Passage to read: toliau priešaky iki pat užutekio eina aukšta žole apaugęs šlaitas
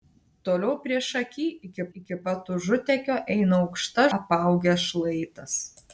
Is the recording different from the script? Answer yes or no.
yes